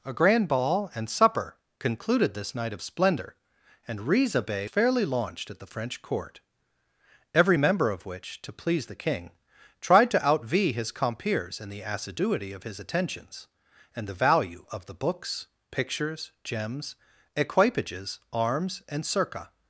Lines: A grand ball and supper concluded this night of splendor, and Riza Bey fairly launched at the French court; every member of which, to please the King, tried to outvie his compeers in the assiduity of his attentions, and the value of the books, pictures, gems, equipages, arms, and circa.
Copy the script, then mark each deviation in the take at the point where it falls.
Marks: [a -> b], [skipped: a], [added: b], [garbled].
A grand ball and supper concluded this night of splendor, and Riza Bey fairly launched at the French court; every member of which, to please the King, tried to outvie his compeers in the assiduity of his attentions, and the value of the books, pictures, gems, equipages, arms, and circa.